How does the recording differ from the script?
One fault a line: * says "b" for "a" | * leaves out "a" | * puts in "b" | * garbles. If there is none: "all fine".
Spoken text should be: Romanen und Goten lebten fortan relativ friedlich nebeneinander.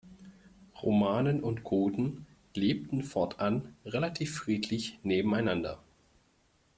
all fine